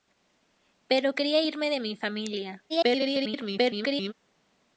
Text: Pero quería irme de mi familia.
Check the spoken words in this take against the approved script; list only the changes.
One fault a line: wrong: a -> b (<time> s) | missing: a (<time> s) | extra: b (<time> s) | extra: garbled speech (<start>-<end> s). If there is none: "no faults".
extra: garbled speech (2.7-4.1 s)